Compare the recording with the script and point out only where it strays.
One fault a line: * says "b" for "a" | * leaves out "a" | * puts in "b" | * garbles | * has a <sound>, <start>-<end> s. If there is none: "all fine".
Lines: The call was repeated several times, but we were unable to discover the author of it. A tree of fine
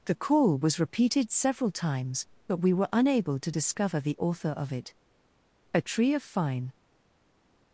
all fine